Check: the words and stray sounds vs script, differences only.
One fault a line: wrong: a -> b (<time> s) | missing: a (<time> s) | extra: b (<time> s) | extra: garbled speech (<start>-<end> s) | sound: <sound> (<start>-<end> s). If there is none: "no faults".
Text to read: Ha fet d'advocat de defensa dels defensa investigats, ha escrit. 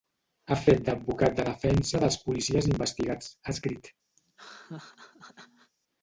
wrong: defensa -> policies (2.2 s)
sound: laugh (4.2-5.7 s)